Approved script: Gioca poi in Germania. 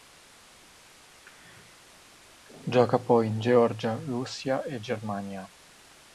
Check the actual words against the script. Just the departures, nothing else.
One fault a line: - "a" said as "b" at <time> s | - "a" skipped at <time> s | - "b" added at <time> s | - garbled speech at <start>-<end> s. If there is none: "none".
- "Georgia Russia e" added at 3.4 s